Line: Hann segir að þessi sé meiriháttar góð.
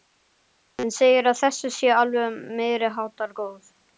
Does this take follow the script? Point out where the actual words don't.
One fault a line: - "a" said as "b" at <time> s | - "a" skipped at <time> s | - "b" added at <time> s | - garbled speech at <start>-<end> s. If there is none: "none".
- "alveg" added at 2.0 s